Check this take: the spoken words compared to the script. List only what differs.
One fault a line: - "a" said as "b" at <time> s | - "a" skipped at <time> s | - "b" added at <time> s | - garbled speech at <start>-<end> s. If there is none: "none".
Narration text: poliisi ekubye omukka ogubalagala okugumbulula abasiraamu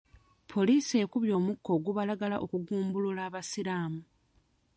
none